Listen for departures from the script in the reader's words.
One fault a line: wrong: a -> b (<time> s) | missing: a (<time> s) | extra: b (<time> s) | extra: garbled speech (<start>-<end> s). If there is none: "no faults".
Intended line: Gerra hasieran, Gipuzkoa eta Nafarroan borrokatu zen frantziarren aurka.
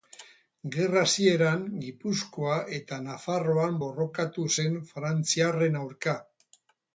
no faults